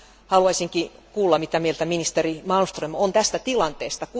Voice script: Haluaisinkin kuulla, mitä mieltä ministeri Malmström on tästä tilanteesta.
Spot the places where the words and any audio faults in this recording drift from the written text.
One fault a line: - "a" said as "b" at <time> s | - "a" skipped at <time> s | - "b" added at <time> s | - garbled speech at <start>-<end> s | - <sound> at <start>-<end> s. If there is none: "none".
none